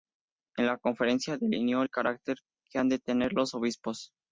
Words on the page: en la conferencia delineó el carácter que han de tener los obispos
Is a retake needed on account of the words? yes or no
no